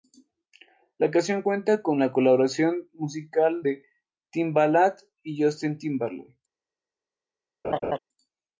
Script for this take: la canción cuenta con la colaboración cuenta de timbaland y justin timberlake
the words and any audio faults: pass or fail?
fail